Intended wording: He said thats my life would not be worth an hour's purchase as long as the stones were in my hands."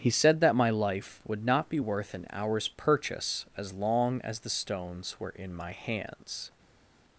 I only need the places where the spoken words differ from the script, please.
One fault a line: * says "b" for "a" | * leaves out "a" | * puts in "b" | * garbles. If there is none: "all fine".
* says "that" for "thats"